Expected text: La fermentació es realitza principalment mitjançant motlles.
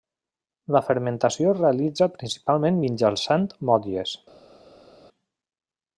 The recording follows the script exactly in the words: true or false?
true